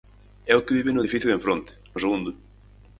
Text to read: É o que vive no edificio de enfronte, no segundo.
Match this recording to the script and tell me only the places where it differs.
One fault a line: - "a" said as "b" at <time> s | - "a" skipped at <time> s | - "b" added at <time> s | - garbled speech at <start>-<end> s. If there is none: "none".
none